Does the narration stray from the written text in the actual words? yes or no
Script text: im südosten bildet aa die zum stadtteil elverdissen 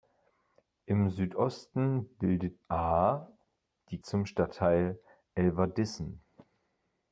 no